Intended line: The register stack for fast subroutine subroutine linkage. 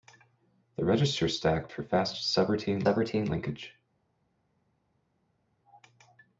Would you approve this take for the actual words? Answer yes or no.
yes